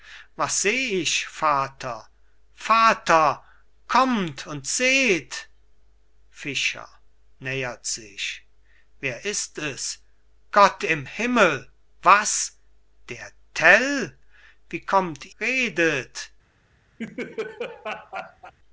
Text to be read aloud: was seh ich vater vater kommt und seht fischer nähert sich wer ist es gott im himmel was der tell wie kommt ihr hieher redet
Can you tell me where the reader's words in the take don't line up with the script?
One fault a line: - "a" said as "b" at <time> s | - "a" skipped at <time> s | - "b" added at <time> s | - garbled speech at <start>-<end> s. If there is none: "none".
- "ihr hieher" skipped at 15.4 s